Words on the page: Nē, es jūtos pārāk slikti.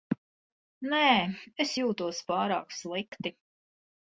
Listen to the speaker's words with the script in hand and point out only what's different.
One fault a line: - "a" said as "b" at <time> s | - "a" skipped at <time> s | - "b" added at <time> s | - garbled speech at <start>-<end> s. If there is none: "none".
none